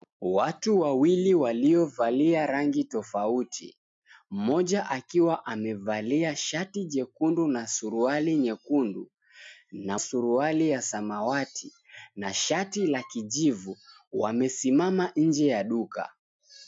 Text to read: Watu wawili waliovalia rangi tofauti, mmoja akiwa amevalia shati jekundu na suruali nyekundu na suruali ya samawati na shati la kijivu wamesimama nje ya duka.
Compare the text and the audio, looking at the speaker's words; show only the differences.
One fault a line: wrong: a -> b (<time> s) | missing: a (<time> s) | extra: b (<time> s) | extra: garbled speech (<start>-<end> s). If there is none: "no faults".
no faults